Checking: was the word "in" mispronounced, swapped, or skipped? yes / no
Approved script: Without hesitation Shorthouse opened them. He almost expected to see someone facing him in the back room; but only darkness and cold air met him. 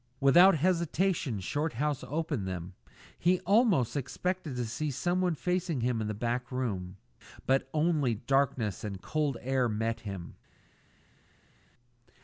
no